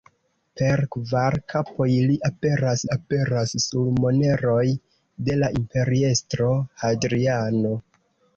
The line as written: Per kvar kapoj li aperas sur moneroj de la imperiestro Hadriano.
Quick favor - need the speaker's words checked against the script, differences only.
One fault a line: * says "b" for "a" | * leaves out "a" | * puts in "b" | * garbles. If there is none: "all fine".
* puts in "aperas"